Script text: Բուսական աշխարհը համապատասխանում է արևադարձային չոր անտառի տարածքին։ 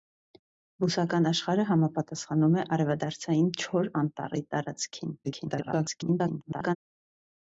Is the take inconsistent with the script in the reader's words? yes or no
yes